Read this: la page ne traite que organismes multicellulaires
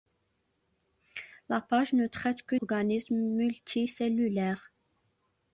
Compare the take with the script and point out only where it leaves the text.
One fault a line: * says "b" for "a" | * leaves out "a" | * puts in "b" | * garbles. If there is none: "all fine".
all fine